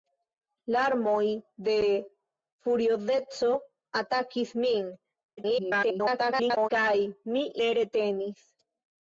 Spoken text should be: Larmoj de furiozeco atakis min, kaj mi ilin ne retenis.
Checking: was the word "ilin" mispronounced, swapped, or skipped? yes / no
yes